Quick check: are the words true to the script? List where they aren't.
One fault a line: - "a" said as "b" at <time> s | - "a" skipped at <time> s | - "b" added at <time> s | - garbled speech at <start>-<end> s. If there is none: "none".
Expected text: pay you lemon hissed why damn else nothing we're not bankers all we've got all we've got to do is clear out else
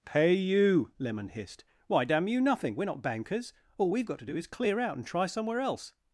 - "else" said as "you" at 2.3 s
- "all we've got" skipped at 4.2 s
- "and try somewhere" added at 5.0 s